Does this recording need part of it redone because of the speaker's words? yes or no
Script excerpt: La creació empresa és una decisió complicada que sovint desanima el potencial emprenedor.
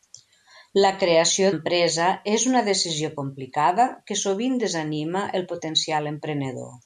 no